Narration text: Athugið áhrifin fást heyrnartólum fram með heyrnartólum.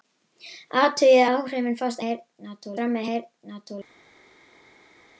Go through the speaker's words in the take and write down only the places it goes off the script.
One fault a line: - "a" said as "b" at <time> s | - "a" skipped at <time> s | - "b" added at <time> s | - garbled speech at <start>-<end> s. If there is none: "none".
none